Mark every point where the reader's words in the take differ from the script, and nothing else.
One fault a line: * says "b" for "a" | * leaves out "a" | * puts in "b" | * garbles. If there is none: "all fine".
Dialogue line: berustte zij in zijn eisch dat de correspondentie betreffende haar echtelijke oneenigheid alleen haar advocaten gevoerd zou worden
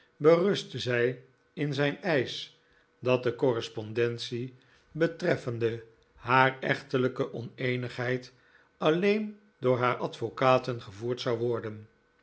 * puts in "door"